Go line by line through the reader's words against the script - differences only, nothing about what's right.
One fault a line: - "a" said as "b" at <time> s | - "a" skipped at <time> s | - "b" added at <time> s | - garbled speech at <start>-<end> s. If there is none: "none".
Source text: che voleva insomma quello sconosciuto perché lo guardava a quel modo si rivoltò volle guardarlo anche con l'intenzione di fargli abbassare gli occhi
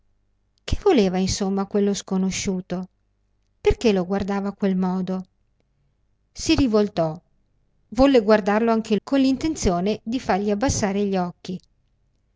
none